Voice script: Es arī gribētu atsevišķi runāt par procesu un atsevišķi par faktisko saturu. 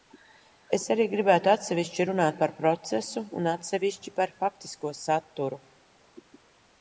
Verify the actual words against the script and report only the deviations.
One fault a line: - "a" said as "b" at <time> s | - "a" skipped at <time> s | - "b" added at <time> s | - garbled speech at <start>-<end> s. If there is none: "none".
none